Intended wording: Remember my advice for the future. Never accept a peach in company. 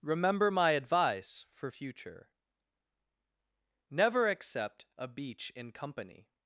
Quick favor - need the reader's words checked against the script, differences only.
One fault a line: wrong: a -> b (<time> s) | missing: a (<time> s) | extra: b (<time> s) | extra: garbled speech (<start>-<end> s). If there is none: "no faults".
missing: the (1.7 s)
wrong: peach -> beach (5.1 s)